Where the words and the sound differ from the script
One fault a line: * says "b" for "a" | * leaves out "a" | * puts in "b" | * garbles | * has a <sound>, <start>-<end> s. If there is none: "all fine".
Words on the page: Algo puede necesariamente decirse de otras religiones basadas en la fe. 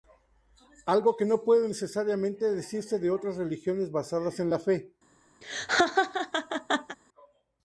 * puts in "que no"
* has a laugh, 5.4-7.0 s